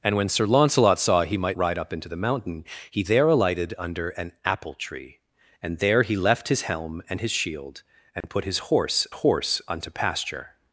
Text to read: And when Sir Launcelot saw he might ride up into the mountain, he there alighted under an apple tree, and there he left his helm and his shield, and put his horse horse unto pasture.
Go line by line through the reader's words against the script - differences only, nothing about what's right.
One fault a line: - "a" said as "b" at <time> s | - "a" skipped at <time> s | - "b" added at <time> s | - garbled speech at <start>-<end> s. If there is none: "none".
none